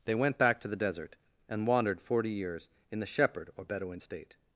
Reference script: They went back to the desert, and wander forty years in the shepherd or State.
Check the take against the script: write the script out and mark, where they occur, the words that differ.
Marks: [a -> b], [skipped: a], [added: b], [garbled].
They went back to the desert, and [wander -> wandered] forty years in the shepherd or [added: Bedouin] State.